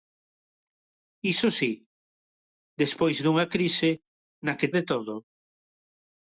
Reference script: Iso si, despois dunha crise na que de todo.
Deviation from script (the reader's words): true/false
false